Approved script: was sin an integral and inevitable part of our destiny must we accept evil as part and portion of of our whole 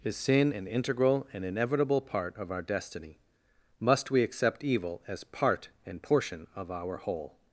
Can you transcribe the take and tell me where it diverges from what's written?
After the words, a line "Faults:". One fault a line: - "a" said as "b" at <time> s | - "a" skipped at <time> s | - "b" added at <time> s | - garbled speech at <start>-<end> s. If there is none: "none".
is sin an integral and inevitable part of our destiny must we accept evil as part and portion of our whole
Faults:
- "was" said as "is" at 0.0 s
- "of" skipped at 6.7 s